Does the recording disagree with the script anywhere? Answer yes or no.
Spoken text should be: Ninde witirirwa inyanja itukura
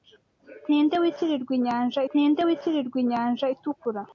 yes